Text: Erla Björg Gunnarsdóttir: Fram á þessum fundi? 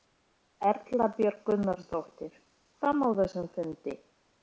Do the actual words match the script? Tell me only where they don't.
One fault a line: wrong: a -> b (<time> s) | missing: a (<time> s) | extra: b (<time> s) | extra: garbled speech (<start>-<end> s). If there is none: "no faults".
no faults